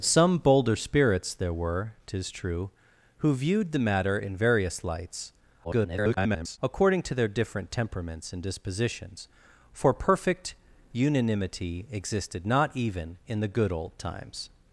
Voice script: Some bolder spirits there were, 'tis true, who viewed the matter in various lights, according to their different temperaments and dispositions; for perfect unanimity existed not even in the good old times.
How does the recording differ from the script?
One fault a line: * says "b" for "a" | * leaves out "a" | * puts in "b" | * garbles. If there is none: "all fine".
* garbles